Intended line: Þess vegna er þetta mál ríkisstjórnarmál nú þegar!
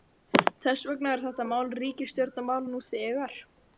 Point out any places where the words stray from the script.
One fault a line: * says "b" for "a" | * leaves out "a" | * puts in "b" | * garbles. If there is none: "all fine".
all fine